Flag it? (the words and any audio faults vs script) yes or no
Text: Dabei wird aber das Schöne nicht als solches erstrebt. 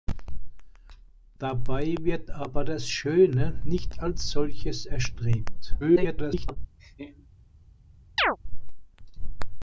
yes